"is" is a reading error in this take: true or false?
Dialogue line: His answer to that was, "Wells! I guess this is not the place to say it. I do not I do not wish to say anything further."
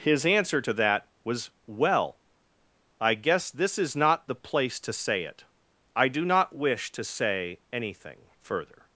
false